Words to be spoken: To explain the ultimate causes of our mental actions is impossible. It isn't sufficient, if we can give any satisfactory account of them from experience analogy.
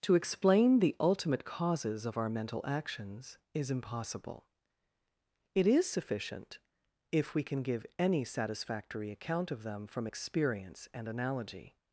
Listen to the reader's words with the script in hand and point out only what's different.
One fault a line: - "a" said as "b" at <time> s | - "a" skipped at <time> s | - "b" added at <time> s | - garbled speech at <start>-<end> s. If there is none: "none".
- "isn't" said as "is" at 5.7 s
- "and" added at 10.9 s